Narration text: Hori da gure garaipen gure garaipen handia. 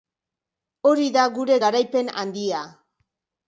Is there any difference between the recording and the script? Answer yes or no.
yes